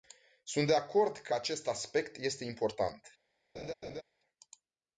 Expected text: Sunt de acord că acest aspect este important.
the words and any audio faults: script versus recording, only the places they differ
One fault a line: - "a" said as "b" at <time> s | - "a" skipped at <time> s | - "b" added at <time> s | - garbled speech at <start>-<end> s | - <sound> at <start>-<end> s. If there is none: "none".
- laugh at 3.5-4.0 s